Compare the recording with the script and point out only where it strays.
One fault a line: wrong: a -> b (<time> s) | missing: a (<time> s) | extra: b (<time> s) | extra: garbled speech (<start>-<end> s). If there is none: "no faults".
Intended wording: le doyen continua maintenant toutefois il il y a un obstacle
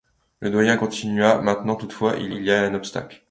no faults